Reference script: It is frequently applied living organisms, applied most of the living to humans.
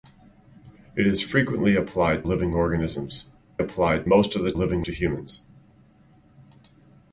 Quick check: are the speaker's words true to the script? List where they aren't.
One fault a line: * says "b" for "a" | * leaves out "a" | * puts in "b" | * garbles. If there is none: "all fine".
all fine